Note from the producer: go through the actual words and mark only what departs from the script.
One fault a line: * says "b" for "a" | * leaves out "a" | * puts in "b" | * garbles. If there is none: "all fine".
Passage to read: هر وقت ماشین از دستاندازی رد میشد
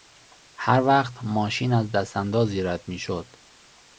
all fine